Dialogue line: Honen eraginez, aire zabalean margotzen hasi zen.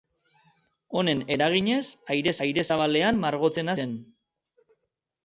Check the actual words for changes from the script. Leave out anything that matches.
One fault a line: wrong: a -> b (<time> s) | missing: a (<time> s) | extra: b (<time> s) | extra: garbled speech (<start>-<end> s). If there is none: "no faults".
extra: aire (2.5 s)
missing: hasi (3.8 s)